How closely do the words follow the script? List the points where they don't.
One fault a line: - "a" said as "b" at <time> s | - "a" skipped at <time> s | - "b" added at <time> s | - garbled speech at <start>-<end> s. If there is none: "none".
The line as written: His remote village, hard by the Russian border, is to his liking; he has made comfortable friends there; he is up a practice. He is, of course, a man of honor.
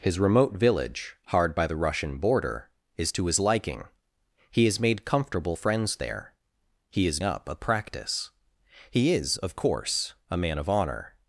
none